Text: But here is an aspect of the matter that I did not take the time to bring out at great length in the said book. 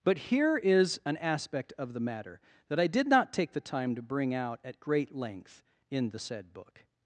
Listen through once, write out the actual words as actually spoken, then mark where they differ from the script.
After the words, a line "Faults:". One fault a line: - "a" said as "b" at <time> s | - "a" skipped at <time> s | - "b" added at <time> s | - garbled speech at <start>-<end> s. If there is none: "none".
But here is an aspect of the matter that I did not take the time to bring out at great length in the said book.
Faults:
none